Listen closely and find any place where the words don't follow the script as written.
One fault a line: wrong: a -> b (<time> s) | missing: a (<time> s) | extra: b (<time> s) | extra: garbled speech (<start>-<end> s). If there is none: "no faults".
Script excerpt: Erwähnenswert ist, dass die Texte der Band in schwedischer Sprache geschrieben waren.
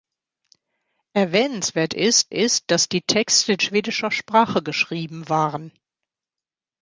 extra: ist (2.3 s)
missing: der Band in (3.6 s)